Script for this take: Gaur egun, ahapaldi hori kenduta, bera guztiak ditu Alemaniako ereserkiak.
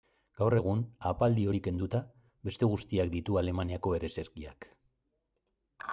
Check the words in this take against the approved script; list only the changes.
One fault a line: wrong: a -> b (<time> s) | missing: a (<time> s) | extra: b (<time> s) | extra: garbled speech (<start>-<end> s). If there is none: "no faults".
wrong: bera -> beste (2.5 s)